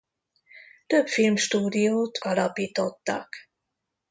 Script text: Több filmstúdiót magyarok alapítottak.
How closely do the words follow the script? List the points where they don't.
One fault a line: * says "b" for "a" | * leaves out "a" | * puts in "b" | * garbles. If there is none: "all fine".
* leaves out "magyarok"